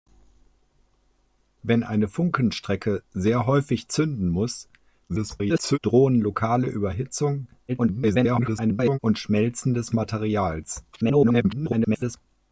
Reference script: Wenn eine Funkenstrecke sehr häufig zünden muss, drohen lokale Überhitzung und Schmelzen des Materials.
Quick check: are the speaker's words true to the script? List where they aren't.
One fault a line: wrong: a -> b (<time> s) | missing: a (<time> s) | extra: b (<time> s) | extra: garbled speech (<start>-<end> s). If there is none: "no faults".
extra: garbled speech (5.1-5.8 s)
extra: garbled speech (7.7-9.0 s)
extra: garbled speech (10.9-12.2 s)